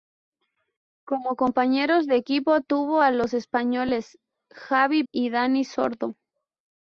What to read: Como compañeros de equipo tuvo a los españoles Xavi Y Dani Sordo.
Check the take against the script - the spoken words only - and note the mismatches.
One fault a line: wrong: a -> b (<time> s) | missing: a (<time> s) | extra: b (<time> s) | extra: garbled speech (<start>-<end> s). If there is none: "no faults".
no faults